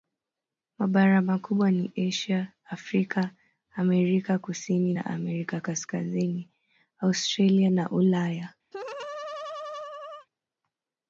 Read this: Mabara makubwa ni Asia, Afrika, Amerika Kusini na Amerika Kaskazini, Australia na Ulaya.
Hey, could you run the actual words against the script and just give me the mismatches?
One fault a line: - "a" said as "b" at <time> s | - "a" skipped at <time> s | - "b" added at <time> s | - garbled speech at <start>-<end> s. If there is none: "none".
none